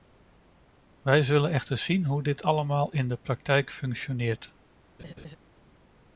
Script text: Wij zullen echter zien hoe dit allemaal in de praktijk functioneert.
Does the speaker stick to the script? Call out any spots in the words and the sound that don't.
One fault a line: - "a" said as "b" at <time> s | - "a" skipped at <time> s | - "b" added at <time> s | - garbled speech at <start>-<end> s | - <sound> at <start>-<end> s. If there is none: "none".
- laugh at 5.0-5.4 s